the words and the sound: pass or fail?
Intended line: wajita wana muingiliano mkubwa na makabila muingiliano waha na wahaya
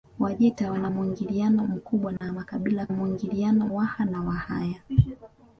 fail